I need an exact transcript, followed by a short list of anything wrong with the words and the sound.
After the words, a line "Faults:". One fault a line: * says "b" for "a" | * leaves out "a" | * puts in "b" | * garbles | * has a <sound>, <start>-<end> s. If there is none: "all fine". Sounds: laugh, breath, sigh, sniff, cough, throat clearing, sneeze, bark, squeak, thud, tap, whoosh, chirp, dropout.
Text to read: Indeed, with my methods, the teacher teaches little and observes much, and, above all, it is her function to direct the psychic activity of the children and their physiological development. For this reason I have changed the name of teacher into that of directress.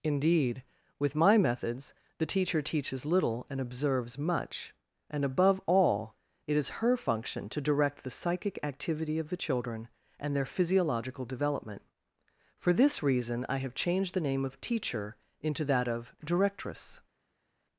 Indeed, with my methods, the teacher teaches little and observes much, and, above all, it is her function to direct the psychic activity of the children and their physiological development. For this reason I have changed the name of teacher into that of directress.
Faults:
all fine